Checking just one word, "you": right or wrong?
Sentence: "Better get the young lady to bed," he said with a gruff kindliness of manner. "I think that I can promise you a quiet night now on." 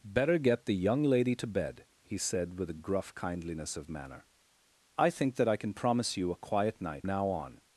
right